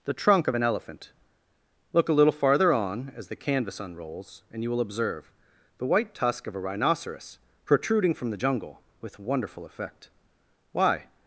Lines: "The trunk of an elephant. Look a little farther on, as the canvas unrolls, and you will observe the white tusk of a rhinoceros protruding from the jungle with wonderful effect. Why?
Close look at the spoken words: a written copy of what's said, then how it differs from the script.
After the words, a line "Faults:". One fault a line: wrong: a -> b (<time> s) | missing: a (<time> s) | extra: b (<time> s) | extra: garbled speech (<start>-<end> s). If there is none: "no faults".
"The trunk of an elephant. Look a little farther on, as the canvas unrolls, and you will observe the white tusk of a rhinoceros protruding from the jungle with wonderful effect. Why?
Faults:
no faults